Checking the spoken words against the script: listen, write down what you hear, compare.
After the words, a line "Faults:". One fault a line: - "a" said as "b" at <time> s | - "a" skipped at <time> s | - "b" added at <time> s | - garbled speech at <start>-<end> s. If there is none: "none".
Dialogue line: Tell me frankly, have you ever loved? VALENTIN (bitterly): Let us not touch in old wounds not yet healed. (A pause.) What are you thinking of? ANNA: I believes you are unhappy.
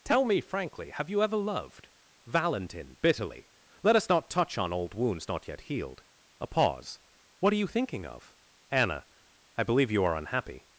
Tell me frankly, have you ever loved? VALENTIN (bitterly): Let us not touch on old wounds not yet healed. (A pause.) What are you thinking of? ANNA: I believe you are unhappy.
Faults:
- "in" said as "on" at 4.6 s
- "believes" said as "believe" at 9.6 s